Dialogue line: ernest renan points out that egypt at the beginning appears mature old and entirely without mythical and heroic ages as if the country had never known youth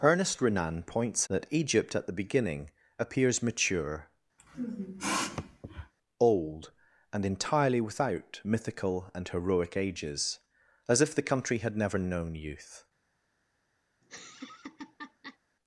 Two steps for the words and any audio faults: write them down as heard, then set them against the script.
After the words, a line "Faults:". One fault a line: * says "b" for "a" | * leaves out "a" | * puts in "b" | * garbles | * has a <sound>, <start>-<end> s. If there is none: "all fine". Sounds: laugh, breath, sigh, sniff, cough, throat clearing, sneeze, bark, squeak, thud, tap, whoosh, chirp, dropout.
ernest renan points that egypt at the beginning appears mature old and entirely without mythical and heroic ages as if the country had never known youth
Faults:
* leaves out "out"
* has a sniff, 4.4-5.9 s
* has a laugh, 14.0-15.4 s